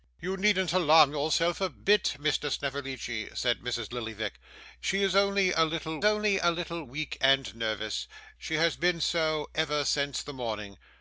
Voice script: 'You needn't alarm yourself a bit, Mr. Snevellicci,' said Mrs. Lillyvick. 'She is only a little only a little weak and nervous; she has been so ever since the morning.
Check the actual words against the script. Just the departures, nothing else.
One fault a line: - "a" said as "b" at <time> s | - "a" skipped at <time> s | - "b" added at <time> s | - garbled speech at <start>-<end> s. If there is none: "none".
none